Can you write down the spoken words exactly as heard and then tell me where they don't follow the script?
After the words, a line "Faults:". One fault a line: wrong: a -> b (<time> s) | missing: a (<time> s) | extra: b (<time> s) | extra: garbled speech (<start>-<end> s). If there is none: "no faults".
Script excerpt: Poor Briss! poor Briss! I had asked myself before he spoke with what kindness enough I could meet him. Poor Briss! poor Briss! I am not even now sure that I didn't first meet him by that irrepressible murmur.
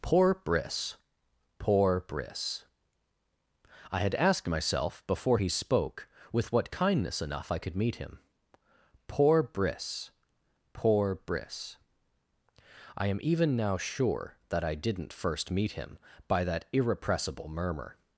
Poor Briss! poor Briss! I had asked myself before he spoke with what kindness enough I could meet him. Poor Briss! poor Briss! I am even now sure that I didn't first meet him by that irrepressible murmur.
Faults:
missing: not (13.2 s)